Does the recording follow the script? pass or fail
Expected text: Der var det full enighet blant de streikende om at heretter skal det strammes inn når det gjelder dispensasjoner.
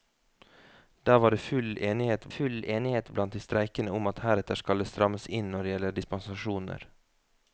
fail